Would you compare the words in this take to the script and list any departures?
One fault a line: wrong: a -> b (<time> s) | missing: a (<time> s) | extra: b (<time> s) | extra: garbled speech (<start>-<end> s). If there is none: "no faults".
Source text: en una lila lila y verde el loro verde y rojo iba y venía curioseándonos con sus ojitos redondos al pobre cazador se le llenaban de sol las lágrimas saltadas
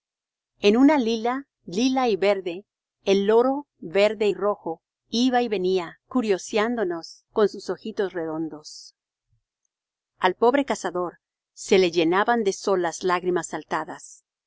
no faults